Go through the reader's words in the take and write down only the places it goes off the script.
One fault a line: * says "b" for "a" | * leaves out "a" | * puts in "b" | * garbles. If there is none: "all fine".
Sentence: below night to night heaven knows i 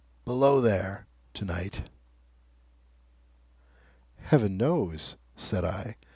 * says "there" for "night"
* puts in "said"